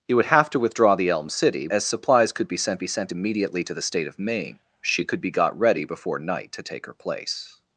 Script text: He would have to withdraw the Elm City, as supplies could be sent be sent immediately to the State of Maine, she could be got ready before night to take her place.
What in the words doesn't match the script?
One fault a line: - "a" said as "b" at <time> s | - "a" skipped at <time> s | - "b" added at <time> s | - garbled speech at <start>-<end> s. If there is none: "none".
none